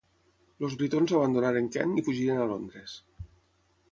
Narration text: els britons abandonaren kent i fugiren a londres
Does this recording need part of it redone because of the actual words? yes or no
no